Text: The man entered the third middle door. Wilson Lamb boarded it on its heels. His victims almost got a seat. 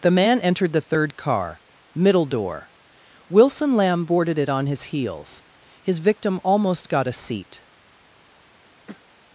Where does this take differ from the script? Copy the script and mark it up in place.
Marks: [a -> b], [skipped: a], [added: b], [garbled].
The man entered the third [added: car] middle door. Wilson Lamb boarded it on [its -> his] heels. His [victims -> victim] almost got a seat.